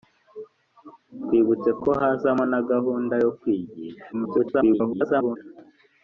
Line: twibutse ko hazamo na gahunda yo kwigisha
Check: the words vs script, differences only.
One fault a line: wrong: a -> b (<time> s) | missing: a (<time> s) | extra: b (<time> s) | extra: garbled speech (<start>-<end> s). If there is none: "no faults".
extra: garbled speech (4.1-5.4 s)